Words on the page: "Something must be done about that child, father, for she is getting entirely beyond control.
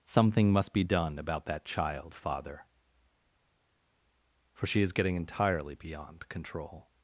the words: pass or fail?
pass